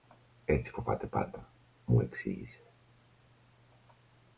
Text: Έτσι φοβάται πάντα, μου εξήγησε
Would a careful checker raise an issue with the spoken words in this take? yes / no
no